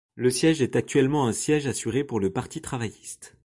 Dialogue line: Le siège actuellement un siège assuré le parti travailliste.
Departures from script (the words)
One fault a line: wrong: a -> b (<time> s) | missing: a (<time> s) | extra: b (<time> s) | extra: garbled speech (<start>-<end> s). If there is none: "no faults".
extra: est (0.6 s)
extra: pour (2.0 s)